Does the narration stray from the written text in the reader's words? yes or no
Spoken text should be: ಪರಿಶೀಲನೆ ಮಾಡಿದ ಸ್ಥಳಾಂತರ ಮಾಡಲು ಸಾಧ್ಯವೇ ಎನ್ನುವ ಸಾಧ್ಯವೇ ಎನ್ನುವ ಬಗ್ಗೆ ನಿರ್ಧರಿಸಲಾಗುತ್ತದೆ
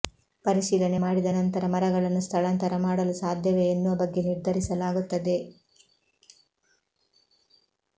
yes